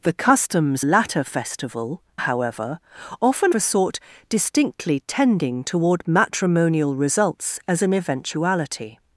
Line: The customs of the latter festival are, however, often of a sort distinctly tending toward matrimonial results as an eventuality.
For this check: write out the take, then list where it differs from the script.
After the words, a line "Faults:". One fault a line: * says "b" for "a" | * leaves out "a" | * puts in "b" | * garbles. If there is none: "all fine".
The customs latter festival however, often a sort distinctly tending toward matrimonial results as an eventuality.
Faults:
* leaves out "of the"
* leaves out "are"
* leaves out "of"